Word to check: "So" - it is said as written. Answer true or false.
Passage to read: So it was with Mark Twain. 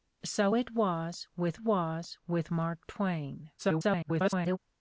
true